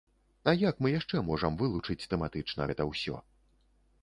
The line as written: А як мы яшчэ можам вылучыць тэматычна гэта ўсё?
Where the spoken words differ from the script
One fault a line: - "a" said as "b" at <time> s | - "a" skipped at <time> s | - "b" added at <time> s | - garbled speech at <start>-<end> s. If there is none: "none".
none